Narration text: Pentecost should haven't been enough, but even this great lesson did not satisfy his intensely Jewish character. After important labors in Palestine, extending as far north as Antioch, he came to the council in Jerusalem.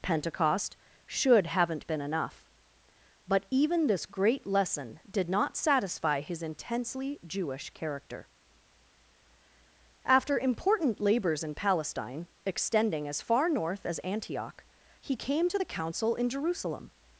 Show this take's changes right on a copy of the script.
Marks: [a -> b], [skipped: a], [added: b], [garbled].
Pentecost should haven't been enough, but even this great lesson did not satisfy his intensely Jewish character. After important labors in Palestine, extending as far north as Antioch, he came to the council in Jerusalem.